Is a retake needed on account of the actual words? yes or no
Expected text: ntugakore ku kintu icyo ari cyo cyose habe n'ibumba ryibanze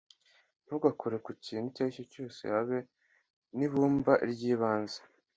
no